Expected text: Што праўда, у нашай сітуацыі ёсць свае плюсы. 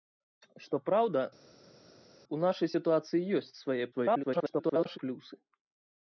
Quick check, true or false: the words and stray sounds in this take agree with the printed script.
false